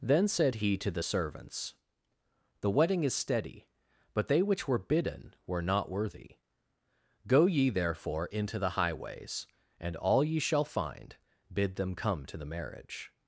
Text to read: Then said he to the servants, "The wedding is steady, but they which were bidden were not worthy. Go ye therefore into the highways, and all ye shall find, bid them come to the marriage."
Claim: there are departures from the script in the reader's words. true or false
false